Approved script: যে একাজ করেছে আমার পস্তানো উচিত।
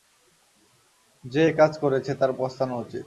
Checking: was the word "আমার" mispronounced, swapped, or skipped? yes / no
yes